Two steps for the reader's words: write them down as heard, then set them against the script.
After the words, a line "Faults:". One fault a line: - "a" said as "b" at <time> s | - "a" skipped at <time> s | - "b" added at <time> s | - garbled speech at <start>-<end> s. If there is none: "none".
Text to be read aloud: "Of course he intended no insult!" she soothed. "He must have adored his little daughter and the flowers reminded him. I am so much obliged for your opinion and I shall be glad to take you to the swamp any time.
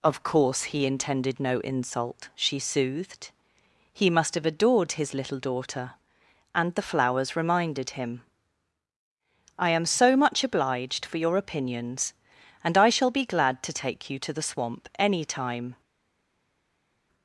"Of course he intended no insult!" she soothed. "He must have adored his little daughter and the flowers reminded him. I am so much obliged for your opinions and I shall be glad to take you to the swamp any time.
Faults:
- "opinion" said as "opinions" at 11.3 s